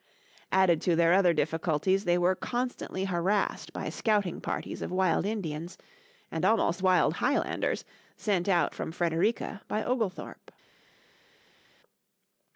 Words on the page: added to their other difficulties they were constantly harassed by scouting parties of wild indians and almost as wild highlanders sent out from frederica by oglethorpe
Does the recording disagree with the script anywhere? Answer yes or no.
yes